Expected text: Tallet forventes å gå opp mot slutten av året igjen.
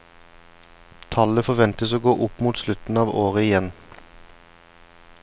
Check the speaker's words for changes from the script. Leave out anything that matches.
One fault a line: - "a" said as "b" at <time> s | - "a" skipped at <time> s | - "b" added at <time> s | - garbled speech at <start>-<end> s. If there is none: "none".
none